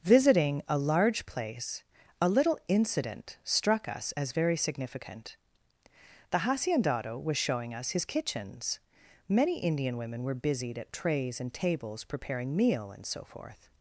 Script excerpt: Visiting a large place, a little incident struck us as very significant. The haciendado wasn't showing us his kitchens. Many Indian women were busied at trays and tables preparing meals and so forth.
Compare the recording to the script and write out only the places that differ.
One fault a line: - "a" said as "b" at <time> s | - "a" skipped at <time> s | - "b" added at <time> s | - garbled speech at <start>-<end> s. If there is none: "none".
- "wasn't" said as "was" at 7.2 s
- "meals" said as "meal" at 12.5 s